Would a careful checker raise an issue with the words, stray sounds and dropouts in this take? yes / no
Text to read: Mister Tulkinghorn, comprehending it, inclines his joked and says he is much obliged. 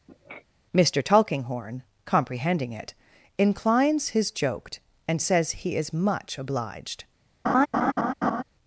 yes